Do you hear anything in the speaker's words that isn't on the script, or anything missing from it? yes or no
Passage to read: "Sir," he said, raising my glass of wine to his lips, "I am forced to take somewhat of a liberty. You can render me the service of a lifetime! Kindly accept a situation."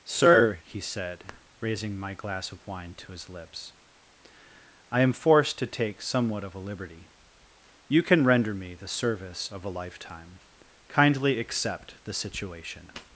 yes